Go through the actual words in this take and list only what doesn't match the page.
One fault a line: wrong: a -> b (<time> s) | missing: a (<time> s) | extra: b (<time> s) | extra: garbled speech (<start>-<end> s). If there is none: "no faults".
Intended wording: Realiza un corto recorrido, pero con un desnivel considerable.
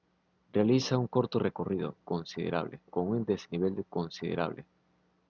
wrong: pero -> considerable (2.0 s)